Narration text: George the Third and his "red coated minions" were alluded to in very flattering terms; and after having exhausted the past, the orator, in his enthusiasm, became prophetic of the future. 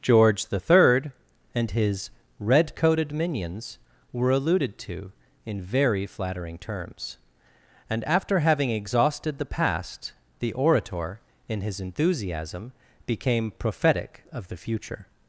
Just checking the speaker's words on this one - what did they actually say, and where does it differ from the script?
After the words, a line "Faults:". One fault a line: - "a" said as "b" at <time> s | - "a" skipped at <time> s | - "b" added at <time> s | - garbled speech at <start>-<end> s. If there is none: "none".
George the Third and his "red coated minions" were alluded to in very flattering terms; and after having exhausted the past, the orator, in his enthusiasm, became prophetic of the future.
Faults:
none